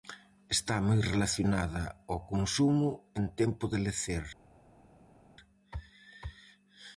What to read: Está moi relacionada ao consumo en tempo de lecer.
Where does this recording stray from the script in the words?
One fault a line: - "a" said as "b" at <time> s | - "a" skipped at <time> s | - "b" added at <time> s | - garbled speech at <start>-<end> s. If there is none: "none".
none